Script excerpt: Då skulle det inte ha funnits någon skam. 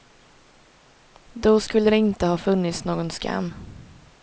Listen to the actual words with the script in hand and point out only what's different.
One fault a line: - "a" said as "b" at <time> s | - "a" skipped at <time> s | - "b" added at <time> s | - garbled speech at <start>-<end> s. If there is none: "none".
none